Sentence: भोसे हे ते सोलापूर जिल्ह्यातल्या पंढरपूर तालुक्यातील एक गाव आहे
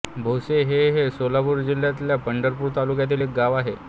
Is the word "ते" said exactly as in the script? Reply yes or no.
no